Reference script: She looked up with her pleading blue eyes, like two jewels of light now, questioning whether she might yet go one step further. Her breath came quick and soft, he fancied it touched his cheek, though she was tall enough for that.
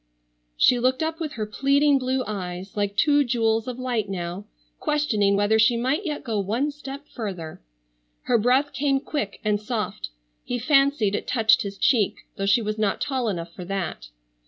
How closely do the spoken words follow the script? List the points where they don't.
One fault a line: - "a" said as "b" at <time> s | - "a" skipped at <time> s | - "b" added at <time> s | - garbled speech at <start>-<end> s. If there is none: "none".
- "not" added at 12.8 s